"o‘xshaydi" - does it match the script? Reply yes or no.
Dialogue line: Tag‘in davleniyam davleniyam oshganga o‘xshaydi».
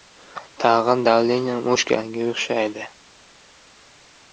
yes